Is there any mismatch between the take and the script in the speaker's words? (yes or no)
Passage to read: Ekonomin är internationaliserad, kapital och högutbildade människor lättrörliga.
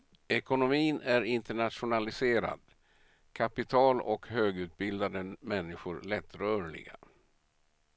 no